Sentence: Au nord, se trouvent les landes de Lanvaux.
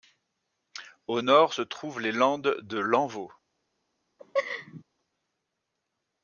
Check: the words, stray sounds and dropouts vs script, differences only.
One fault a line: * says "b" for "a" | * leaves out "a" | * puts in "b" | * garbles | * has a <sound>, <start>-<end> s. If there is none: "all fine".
* has a laugh, 4.2-4.8 s